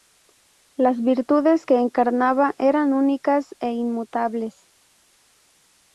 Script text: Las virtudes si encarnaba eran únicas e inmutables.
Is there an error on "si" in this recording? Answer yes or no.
yes